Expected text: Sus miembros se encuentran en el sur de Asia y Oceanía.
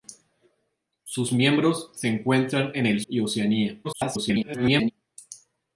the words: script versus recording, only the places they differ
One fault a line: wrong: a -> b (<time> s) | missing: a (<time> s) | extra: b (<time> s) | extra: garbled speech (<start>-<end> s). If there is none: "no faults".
missing: sur de Asia (3.0 s)
extra: garbled speech (3.8-4.9 s)